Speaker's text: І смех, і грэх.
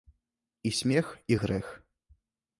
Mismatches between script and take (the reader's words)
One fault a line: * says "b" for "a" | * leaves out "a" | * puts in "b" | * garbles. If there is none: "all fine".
all fine